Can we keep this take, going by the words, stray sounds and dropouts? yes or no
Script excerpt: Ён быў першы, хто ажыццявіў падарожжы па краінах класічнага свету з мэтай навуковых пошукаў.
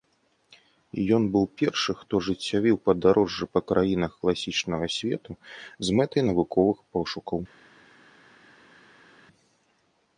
yes